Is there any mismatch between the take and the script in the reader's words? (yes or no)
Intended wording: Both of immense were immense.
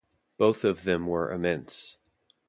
yes